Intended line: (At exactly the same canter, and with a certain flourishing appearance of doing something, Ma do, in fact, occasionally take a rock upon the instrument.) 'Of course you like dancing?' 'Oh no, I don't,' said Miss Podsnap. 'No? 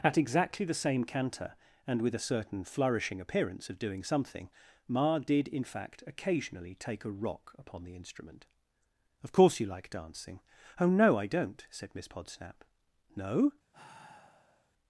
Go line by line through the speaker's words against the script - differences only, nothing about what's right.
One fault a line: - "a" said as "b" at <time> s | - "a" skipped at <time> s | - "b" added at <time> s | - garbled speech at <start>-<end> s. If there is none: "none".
- "do" said as "did" at 5.2 s